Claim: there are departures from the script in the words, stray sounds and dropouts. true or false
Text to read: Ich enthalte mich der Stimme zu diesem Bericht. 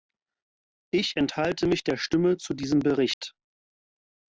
true